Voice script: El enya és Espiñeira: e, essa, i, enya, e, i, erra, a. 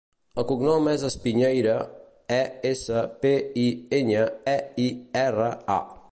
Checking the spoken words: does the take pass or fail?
fail